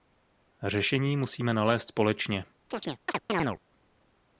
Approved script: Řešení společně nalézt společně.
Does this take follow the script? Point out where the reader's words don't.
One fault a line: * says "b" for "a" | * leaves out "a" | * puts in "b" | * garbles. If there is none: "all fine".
* says "musíme" for "společně"